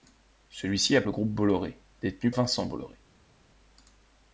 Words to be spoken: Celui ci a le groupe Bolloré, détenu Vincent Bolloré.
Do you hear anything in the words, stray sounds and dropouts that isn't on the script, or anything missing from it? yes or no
no